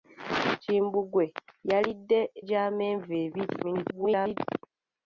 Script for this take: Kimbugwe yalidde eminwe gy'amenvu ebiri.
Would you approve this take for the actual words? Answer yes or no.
no